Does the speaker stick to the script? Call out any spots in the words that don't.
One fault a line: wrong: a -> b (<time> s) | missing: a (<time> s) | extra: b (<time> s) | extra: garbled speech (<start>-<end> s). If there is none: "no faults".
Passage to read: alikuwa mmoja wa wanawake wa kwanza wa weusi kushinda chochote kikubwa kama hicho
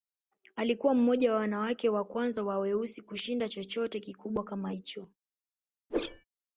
no faults